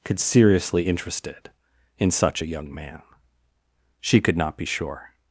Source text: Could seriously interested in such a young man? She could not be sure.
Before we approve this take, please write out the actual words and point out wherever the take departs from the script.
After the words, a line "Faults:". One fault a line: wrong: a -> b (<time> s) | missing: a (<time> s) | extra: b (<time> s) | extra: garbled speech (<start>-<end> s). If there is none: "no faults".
Could seriously interested in such a young man? She could not be sure.
Faults:
no faults